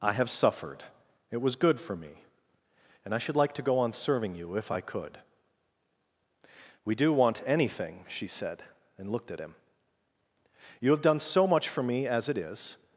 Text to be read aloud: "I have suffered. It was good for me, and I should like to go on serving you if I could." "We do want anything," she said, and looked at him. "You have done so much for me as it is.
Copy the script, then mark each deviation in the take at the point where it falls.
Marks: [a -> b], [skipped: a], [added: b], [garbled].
"I have suffered. It was good for me, and I should like to go on serving you if I could." "We do want anything," she said, and looked at him. "You have done so much for me as it is.